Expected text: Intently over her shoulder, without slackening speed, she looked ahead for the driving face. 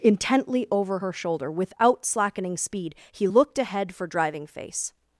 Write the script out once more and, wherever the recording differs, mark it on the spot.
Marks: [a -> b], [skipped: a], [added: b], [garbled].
Intently over her shoulder, without slackening speed, [she -> he] looked ahead for [skipped: the] driving face.